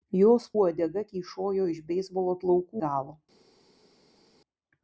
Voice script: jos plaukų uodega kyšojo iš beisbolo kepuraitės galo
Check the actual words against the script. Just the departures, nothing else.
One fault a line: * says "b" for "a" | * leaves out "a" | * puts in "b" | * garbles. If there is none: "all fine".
* leaves out "plaukų"
* says "plaukų" for "kepuraitės"